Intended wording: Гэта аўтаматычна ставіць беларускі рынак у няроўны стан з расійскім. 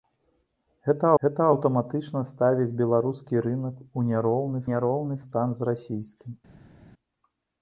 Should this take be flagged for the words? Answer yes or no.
yes